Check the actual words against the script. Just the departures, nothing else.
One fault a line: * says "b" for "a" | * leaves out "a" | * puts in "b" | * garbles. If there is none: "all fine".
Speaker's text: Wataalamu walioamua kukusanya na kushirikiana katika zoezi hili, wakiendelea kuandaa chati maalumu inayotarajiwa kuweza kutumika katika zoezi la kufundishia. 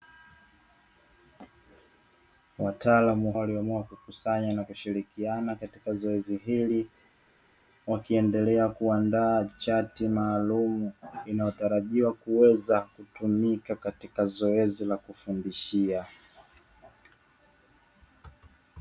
all fine